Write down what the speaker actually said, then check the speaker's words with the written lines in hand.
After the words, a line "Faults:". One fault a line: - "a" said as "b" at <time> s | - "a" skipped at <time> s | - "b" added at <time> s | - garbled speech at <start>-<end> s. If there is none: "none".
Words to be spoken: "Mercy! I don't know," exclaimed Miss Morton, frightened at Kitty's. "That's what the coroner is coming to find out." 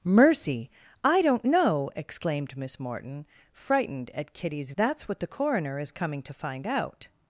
"Mercy! I don't know," exclaimed Miss Morton, frightened at Kitty's. "That's what the coroner is coming to find out."
Faults:
none